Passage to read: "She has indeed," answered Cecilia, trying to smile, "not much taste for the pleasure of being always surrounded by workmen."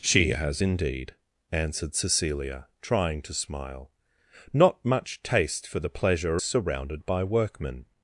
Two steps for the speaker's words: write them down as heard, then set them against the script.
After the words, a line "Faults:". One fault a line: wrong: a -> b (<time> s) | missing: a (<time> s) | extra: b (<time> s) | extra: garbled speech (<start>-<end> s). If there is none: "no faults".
"She has indeed," answered Cecilia, trying to smile, "not much taste for the pleasure surrounded by workmen."
Faults:
missing: of being always (6.4 s)